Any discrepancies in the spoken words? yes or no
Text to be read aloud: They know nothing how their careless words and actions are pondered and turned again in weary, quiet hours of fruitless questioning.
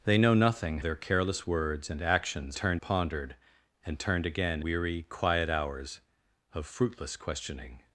yes